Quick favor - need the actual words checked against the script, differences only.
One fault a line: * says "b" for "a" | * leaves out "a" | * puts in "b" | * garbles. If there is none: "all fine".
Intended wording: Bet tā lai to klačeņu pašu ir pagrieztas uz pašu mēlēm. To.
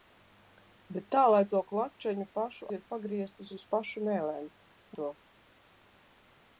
all fine